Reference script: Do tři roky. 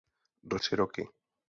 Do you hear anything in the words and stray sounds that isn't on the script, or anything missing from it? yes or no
no